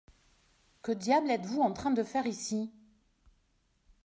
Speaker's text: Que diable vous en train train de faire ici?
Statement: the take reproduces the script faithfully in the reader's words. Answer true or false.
false